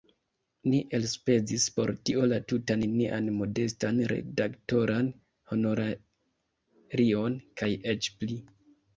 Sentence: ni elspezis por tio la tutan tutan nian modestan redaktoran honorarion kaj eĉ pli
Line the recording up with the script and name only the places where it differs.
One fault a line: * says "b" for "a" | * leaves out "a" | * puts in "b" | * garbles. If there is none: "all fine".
* leaves out "tutan"